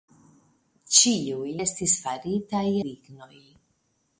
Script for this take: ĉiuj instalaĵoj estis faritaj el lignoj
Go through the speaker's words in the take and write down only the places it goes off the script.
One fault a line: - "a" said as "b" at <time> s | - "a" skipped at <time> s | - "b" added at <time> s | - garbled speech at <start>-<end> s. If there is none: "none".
- "instalaĵoj" skipped at 1.5 s
- "el" skipped at 2.6 s